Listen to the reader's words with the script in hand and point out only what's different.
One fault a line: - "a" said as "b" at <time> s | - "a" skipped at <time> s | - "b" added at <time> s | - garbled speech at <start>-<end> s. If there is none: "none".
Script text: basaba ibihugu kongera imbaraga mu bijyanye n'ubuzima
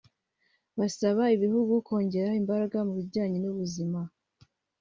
none